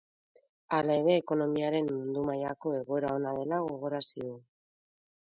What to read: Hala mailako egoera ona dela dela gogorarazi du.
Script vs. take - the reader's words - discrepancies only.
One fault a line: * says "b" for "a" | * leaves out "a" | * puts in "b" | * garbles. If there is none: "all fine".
* puts in "ere ekonomiaren mundu"
* leaves out "dela"